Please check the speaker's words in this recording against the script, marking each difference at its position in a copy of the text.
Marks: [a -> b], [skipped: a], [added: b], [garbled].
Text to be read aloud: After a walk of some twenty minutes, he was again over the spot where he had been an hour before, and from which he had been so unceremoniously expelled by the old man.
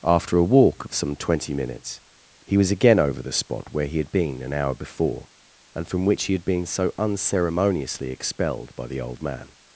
After a walk of some twenty minutes, he was again over the spot where he had been an hour before, and from which he had been so unceremoniously expelled by the old man.